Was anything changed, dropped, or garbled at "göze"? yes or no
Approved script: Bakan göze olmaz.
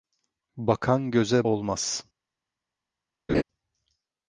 no